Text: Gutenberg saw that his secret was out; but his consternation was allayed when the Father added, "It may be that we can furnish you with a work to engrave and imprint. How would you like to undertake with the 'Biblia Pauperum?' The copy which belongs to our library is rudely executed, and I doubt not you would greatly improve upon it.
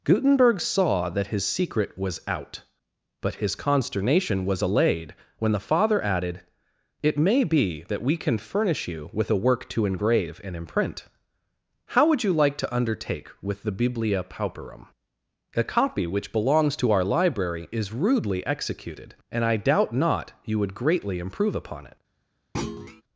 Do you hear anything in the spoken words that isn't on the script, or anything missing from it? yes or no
yes